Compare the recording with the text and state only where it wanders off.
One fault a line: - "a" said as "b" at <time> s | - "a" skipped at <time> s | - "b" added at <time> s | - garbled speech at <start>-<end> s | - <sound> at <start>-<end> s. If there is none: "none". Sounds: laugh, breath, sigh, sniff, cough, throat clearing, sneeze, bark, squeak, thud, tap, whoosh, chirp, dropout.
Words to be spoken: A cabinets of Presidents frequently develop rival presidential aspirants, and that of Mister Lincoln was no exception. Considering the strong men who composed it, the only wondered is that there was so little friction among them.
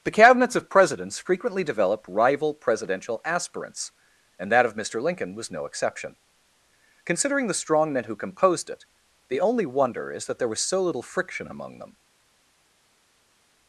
- "A" said as "The" at 0.0 s
- "wondered" said as "wonder" at 9.7 s